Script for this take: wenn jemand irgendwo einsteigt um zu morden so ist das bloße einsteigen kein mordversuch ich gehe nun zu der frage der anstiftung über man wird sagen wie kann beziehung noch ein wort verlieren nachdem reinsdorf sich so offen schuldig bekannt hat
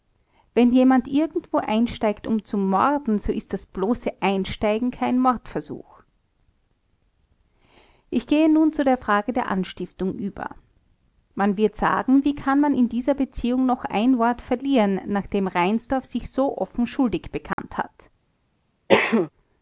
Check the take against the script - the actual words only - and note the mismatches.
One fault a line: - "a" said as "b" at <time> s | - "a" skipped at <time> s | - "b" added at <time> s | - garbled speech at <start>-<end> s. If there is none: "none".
- "man in dieser" added at 12.6 s